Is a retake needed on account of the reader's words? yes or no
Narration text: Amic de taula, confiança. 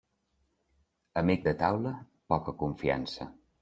yes